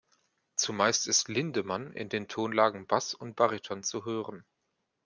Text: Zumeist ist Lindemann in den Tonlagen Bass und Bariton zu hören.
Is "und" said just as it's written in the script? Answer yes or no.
yes